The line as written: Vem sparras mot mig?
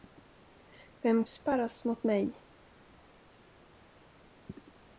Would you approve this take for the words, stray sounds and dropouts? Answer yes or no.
yes